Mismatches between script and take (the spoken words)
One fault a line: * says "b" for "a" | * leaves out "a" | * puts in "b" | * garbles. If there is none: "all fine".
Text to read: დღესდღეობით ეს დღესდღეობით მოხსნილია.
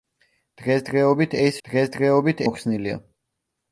all fine